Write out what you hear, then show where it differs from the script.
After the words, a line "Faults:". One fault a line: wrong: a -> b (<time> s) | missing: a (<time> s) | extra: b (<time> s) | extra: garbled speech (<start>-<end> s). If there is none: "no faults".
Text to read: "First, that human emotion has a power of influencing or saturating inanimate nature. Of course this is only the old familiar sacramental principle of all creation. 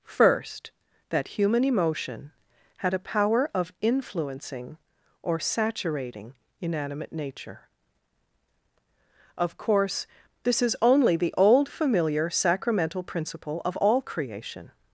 "First, that human emotion had a power of influencing or saturating inanimate nature. Of course this is only the old familiar sacramental principle of all creation.
Faults:
wrong: has -> had (2.8 s)